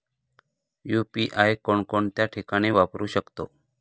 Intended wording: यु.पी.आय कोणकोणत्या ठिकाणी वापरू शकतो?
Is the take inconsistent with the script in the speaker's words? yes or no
no